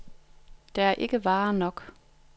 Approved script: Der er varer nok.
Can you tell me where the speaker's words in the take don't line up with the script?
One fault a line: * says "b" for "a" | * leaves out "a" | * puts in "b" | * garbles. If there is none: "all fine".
* puts in "ikke"